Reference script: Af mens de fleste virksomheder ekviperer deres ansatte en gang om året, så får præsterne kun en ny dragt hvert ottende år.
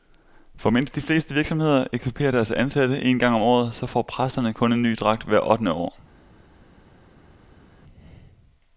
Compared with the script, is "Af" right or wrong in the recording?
wrong